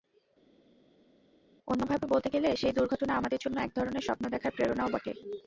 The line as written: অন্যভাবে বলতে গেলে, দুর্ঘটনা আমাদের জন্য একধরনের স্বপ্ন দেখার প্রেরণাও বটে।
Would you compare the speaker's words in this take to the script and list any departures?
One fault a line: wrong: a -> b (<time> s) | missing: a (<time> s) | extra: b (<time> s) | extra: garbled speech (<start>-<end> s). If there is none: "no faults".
extra: সেই (2.6 s)